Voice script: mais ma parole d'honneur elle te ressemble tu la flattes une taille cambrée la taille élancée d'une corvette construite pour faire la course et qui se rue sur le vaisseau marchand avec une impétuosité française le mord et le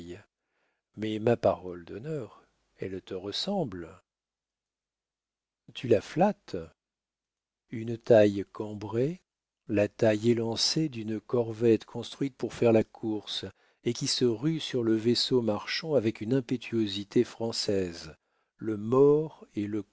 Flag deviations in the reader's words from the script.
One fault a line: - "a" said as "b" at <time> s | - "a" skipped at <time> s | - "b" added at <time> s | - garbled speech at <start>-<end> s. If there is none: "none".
none